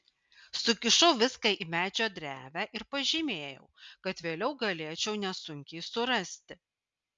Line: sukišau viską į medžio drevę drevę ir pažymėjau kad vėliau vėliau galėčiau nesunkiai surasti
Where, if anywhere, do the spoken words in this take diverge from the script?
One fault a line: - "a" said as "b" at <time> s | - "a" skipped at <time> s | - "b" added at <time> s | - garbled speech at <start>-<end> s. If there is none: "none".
- "drevę" skipped at 2.6 s
- "vėliau" skipped at 4.5 s